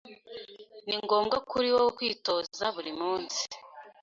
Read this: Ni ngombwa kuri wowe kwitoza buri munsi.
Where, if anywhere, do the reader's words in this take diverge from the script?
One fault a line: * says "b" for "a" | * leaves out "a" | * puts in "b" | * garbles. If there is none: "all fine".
all fine